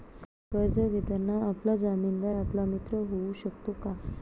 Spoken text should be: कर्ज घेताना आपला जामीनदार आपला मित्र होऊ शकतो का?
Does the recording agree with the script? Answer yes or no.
yes